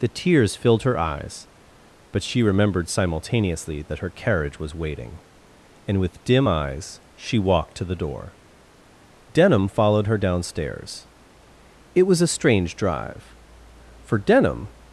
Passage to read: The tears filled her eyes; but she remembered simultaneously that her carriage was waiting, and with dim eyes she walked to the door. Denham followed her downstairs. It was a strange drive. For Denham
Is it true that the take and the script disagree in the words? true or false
false